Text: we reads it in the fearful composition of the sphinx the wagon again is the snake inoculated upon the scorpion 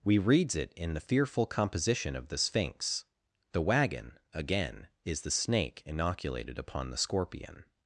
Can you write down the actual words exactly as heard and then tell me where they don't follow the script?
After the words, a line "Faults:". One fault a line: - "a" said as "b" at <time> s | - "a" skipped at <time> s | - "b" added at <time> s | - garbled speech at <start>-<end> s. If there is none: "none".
we reads it in the fearful composition of the sphinx the wagon again is the snake inoculated upon the scorpion
Faults:
none